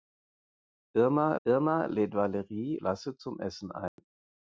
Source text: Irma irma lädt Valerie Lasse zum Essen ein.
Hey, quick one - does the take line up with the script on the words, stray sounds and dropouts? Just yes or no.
no